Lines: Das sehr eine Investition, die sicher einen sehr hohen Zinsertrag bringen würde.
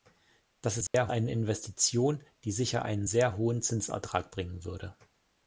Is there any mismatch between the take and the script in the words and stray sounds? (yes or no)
yes